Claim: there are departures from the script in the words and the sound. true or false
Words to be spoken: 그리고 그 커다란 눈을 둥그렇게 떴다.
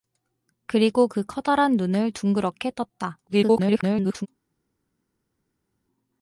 true